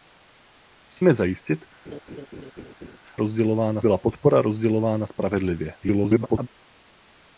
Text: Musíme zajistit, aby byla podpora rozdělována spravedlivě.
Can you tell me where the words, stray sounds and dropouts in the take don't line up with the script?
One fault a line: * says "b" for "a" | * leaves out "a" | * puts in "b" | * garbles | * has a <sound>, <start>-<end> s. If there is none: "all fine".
* has a laugh, 1.9-3.0 s
* says "rozdělována" for "aby"
* garbles